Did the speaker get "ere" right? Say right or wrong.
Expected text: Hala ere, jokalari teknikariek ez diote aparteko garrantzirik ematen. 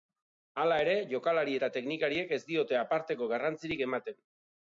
right